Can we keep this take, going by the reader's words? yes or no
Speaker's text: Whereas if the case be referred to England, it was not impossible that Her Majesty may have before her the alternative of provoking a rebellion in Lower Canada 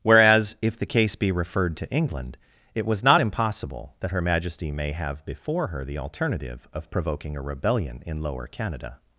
yes